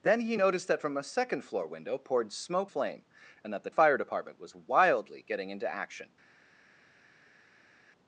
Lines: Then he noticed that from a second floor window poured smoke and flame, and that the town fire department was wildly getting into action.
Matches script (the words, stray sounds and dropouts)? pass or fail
fail